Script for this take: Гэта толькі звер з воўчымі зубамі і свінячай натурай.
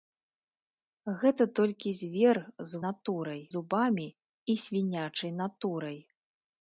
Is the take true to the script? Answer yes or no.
no